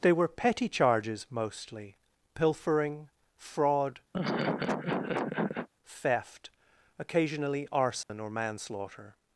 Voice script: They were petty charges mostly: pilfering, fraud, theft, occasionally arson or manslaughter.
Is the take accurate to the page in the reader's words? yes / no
yes